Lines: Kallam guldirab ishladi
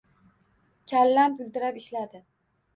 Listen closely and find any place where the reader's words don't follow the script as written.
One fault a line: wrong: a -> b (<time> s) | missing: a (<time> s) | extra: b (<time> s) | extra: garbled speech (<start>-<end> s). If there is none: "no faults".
no faults